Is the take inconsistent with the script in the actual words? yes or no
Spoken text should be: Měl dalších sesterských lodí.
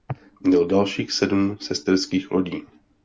yes